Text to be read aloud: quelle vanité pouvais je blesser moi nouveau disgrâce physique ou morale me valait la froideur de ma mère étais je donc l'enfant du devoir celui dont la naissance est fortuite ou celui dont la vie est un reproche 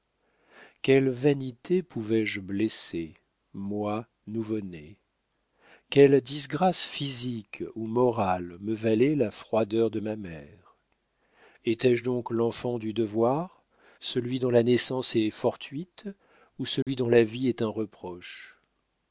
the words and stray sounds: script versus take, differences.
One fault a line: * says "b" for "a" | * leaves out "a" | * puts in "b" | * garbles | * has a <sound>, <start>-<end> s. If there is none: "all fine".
* puts in "né quelle"
* has a dropout, 16.8-16.9 s